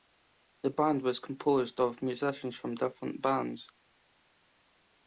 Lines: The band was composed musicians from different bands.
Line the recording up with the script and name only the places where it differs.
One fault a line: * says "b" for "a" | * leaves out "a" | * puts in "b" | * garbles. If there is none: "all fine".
* puts in "of"